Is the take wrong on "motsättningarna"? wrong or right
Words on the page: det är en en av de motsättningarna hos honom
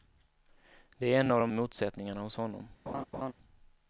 right